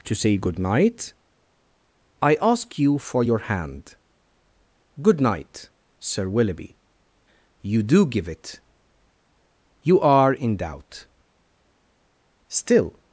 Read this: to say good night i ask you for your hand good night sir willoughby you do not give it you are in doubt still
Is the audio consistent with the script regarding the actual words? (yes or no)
no